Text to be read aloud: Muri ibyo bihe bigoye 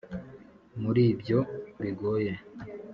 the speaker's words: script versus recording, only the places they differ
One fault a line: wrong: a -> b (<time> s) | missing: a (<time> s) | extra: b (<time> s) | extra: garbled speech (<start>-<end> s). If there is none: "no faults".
missing: bihe (1.4 s)